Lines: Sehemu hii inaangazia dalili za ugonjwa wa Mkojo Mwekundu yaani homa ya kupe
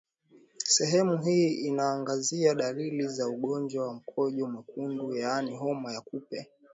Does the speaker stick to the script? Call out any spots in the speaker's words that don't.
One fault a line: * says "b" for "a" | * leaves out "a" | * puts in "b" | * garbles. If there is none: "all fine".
all fine